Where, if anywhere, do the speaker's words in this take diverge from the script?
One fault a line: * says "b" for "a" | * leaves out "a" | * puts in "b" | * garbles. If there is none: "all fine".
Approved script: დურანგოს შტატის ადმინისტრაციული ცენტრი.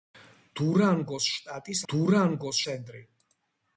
* says "დურანგოს" for "ადმინისტრაციული"